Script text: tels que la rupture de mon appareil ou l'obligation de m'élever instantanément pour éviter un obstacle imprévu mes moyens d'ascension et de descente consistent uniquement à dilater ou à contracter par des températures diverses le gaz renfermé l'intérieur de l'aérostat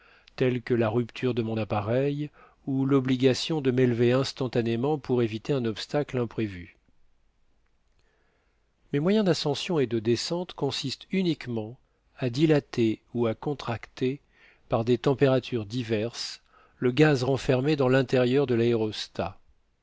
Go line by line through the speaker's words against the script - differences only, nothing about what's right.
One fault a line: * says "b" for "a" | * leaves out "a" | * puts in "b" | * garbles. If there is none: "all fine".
* puts in "dans"